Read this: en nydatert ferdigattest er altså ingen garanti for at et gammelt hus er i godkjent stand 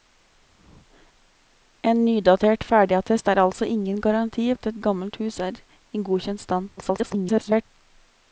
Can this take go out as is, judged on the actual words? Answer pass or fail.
fail